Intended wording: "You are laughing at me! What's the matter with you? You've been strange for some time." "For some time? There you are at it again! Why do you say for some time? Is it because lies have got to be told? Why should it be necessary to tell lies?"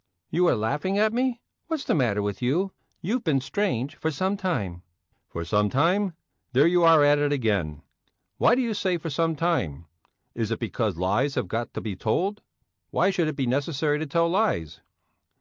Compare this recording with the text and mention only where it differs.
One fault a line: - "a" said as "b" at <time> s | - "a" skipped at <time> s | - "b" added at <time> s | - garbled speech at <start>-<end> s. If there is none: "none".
none